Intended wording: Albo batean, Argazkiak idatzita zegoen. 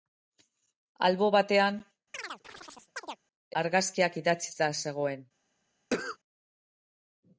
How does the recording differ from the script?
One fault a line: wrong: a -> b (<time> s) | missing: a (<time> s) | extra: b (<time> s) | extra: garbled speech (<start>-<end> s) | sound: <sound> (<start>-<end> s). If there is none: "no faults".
sound: chirp (2.1-3.2 s)
sound: cough (5.9-6.2 s)